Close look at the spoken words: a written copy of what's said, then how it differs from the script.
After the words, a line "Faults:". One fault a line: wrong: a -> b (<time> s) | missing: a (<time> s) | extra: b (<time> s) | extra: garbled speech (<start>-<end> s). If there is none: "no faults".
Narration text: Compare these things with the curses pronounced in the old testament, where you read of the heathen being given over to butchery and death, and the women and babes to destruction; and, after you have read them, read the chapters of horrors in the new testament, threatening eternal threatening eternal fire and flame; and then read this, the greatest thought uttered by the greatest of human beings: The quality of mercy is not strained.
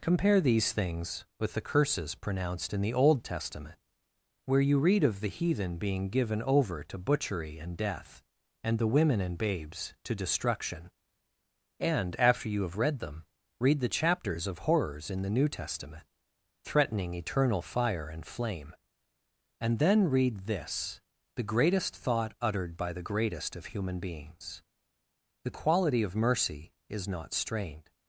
Compare these things with the curses pronounced in the old testament, where you read of the heathen being given over to butchery and death, and the women and babes to destruction; and, after you have read them, read the chapters of horrors in the new testament, threatening eternal fire and flame; and then read this, the greatest thought uttered by the greatest of human beings: The quality of mercy is not strained.
Faults:
missing: threatening eternal (17.6 s)